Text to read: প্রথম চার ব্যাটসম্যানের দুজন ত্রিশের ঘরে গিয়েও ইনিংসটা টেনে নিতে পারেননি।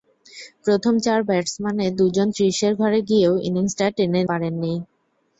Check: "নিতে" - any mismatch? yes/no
yes